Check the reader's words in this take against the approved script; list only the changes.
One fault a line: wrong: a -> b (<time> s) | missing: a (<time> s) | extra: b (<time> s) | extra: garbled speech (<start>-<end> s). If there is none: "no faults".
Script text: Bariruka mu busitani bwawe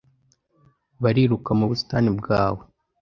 no faults